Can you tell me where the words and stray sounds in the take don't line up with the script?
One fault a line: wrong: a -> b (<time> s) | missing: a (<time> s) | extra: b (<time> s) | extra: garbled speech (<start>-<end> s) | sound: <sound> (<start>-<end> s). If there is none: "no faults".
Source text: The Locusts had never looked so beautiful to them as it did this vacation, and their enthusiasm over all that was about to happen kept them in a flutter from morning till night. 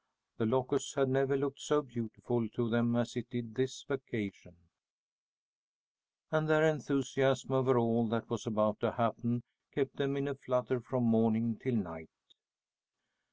no faults